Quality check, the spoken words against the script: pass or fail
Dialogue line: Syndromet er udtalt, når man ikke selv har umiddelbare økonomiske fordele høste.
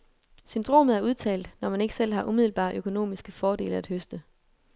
fail